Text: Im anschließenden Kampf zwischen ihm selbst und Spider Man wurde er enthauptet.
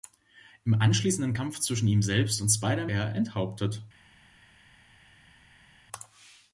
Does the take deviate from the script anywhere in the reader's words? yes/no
yes